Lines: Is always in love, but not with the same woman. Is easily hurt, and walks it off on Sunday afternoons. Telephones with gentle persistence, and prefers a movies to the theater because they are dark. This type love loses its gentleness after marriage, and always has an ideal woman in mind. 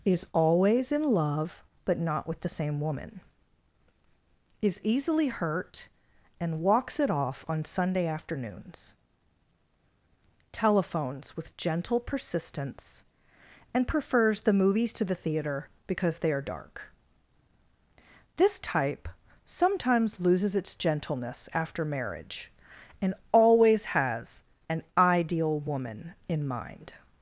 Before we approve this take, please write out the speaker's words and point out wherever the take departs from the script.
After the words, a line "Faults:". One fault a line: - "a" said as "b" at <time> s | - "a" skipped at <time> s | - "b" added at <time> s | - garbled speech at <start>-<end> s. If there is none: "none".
Is always in love, but not with the same woman. Is easily hurt, and walks it off on Sunday afternoons. Telephones with gentle persistence, and prefers the movies to the theater because they are dark. This type sometimes loses its gentleness after marriage, and always has an ideal woman in mind.
Faults:
- "a" said as "the" at 14.4 s
- "love" said as "sometimes" at 19.4 s